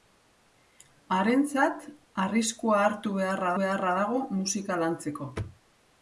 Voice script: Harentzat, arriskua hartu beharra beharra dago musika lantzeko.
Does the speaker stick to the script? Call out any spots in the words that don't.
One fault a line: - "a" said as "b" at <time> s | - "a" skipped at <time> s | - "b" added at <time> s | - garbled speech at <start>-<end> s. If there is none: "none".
none